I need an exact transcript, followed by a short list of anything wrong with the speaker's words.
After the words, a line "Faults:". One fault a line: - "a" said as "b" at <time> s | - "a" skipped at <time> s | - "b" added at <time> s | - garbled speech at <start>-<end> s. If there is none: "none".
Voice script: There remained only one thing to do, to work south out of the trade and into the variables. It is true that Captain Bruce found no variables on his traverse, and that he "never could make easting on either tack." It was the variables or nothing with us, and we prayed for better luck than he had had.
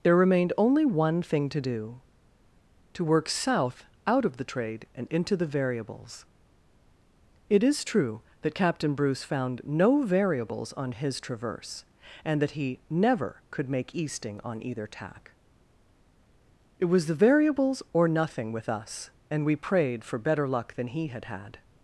There remained only one thing to do, to work south out of the trade and into the variables. It is true that Captain Bruce found no variables on his traverse, and that he "never could make easting on either tack." It was the variables or nothing with us, and we prayed for better luck than he had had.
Faults:
none